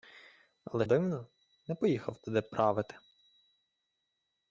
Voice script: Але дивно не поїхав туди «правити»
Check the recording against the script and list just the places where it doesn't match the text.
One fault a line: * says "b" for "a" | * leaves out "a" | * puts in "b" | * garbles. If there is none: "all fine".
all fine